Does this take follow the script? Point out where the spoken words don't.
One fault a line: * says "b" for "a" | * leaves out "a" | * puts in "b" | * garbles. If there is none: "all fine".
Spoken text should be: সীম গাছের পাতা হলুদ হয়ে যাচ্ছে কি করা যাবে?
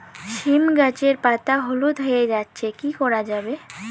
all fine